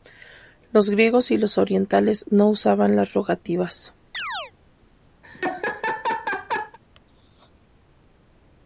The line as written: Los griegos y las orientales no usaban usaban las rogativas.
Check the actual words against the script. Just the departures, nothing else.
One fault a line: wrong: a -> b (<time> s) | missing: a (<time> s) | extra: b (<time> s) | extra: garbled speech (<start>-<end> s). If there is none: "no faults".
wrong: las -> los (1.4 s)
missing: usaban (3.0 s)